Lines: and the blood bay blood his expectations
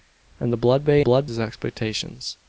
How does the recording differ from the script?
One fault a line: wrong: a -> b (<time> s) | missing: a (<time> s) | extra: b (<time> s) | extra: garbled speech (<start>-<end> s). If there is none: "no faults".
no faults